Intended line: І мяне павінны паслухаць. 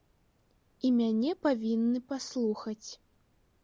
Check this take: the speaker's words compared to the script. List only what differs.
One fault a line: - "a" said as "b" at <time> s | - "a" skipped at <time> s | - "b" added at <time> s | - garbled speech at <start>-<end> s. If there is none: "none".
none